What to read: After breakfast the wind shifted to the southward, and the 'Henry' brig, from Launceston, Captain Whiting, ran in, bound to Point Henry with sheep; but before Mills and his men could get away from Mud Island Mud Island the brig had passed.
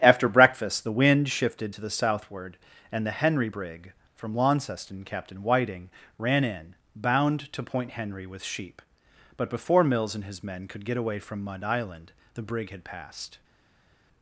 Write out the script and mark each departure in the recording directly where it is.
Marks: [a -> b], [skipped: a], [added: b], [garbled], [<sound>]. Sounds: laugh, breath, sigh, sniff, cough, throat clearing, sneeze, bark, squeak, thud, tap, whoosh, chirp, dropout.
After breakfast the wind shifted to the southward, and the 'Henry' brig, from Launceston, Captain Whiting, ran in, bound to Point Henry with sheep; but before Mills and his men could get away from Mud Island [skipped: Mud Island] the brig had passed.